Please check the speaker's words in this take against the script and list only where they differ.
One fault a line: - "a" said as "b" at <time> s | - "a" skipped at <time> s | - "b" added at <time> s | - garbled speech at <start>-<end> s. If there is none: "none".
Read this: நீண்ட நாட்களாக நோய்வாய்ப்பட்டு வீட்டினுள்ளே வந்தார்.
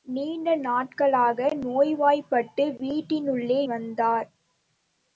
none